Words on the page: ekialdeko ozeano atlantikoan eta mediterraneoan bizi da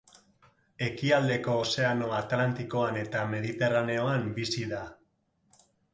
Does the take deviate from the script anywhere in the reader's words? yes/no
no